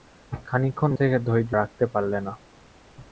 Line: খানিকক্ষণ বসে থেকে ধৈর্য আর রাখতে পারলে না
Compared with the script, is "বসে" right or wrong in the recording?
wrong